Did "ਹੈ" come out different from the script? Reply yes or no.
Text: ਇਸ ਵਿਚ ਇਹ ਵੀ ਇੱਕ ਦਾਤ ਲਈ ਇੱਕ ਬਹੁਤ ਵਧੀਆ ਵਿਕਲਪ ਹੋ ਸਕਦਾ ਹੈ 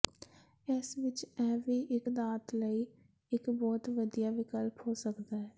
no